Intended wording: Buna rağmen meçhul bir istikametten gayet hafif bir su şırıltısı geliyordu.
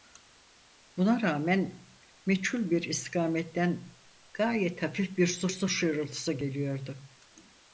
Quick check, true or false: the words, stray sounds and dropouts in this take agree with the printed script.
false